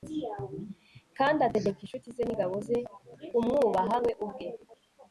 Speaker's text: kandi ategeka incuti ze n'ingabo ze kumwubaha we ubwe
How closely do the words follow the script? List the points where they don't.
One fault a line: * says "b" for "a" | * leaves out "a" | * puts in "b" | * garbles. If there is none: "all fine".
all fine